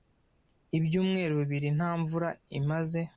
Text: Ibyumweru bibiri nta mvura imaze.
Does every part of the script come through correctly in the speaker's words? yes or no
yes